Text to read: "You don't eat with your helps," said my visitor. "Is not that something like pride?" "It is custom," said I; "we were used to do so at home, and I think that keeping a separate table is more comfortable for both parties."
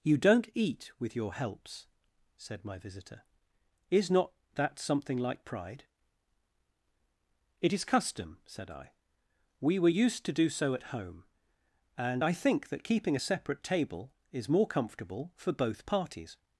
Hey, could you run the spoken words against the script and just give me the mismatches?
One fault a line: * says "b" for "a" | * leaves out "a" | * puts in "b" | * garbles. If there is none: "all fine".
all fine